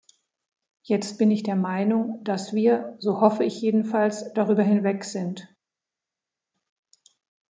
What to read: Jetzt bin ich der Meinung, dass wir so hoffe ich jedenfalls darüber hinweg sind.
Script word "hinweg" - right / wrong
right